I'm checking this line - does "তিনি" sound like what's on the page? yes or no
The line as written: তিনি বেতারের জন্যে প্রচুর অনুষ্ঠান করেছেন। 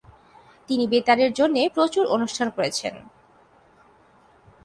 yes